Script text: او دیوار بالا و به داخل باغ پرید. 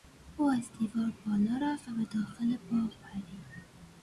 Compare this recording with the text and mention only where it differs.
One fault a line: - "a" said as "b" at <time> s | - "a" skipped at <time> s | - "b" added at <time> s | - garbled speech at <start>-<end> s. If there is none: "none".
- "از" added at 0.5 s
- "رفت" added at 1.6 s